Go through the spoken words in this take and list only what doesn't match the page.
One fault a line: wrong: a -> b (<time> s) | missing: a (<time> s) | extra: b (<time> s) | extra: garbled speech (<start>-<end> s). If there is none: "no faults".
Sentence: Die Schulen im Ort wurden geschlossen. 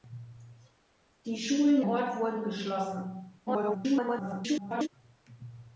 missing: im (1.8 s)
extra: garbled speech (3.5-4.9 s)